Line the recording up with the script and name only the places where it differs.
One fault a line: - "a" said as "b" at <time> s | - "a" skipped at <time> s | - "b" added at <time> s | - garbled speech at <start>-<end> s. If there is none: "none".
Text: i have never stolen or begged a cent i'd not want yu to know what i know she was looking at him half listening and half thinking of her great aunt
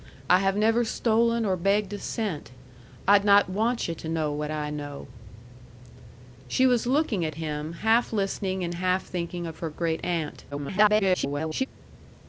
- garbled speech at 10.5-11.7 s